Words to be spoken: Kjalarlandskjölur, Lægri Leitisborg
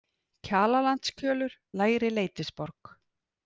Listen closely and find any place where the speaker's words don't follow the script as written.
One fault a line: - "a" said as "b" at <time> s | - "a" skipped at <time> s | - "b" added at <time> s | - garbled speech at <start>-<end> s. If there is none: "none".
none